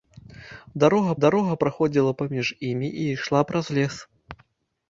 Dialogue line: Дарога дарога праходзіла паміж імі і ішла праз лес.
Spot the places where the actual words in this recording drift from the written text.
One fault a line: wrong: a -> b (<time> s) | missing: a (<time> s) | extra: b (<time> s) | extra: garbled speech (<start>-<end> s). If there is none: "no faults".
no faults